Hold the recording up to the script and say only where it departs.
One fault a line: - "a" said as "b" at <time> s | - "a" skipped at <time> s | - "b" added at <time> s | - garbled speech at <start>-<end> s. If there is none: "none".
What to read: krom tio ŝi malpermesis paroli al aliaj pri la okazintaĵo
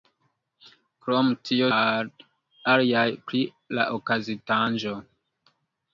- "ŝi malpermesis paroli" skipped at 1.7 s